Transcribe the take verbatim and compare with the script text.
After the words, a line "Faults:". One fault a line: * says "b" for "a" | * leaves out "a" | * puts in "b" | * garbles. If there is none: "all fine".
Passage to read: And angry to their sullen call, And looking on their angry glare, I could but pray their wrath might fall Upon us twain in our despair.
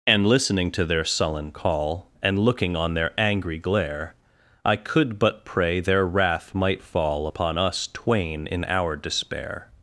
And listening to their sullen call, And looking on their angry glare, I could but pray their wrath might fall Upon us twain in our despair.
Faults:
* says "listening" for "angry"